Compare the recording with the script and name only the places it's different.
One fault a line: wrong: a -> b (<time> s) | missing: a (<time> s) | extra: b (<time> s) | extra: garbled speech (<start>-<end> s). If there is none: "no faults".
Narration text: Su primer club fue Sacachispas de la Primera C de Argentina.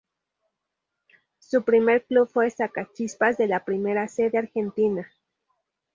no faults